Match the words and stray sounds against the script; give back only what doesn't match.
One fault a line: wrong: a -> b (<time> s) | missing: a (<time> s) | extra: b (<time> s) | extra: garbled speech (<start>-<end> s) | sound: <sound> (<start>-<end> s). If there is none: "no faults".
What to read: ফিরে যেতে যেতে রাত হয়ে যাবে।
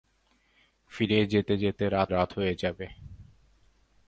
extra: রাত (2.1 s)